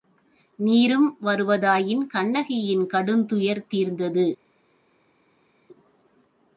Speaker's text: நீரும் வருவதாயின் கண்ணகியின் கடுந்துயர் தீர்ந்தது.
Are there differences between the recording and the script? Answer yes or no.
no